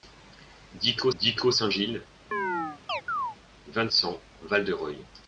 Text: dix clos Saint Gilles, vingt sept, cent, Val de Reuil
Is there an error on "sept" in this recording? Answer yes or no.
yes